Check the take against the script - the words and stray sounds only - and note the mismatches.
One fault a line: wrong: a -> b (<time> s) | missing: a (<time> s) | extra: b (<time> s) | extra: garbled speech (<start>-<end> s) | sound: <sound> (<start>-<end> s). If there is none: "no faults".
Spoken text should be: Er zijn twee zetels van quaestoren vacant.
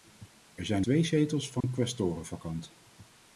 sound: dropout (1.6-1.6 s)